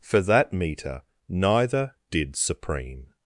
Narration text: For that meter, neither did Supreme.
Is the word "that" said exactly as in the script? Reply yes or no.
yes